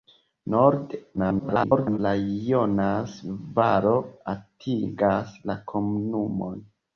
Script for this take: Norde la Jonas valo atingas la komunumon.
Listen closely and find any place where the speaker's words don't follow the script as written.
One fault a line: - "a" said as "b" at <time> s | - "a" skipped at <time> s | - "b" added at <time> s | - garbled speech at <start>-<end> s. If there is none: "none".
- garbled speech at 1.2-2.0 s